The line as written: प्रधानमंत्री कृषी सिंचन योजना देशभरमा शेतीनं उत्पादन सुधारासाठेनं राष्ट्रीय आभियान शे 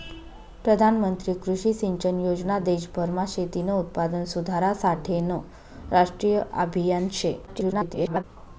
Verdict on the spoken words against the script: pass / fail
fail